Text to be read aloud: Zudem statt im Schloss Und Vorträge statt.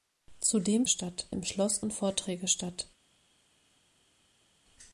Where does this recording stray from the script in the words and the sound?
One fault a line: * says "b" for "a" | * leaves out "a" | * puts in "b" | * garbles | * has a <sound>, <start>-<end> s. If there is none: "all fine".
all fine